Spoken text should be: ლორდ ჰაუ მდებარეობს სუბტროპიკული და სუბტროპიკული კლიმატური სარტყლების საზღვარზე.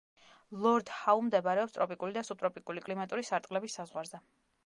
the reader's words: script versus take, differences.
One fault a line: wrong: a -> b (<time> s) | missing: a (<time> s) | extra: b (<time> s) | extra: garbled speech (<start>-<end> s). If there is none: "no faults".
wrong: სუბტროპიკული -> ტროპიკული (1.8 s)